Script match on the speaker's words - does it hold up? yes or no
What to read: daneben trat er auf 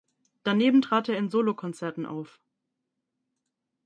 no